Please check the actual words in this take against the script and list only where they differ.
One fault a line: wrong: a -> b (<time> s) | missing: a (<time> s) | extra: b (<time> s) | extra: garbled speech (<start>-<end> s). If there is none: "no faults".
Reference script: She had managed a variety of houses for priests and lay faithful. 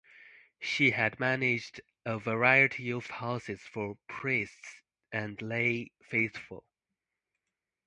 no faults